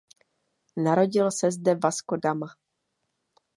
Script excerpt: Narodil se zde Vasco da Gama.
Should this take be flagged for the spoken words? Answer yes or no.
yes